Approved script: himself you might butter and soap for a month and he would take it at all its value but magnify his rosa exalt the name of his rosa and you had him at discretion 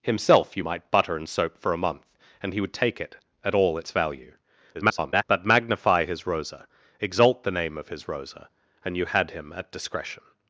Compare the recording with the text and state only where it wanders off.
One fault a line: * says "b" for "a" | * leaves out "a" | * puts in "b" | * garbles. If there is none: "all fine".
* garbles